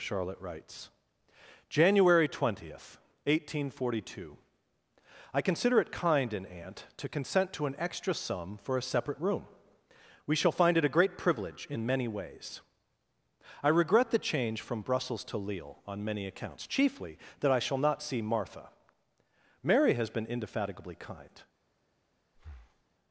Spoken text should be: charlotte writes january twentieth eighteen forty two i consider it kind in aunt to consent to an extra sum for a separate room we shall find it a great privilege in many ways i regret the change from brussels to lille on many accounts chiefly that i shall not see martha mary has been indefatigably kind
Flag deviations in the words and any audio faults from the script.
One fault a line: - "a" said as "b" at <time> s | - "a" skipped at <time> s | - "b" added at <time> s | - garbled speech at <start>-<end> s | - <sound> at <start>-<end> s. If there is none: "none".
- breath at 22.3-22.8 s